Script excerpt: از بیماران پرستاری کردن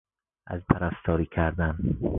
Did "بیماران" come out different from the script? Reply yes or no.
yes